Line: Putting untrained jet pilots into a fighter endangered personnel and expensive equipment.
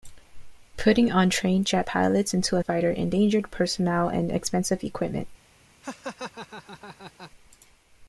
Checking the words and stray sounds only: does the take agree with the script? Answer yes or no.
no